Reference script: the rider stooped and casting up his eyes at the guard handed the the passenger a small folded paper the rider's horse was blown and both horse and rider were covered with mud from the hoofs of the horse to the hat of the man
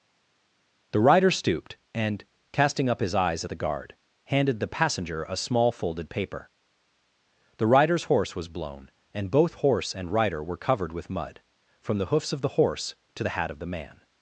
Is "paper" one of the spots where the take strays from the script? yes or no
no